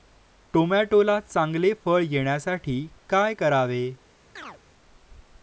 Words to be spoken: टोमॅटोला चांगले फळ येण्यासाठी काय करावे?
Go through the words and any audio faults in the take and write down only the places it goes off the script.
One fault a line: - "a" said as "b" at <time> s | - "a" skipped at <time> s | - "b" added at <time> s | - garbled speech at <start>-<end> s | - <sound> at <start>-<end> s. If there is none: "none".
- chirp at 4.4-4.6 s